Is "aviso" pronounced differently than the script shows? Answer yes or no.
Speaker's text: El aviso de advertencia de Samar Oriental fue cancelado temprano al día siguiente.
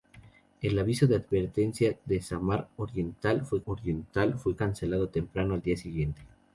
no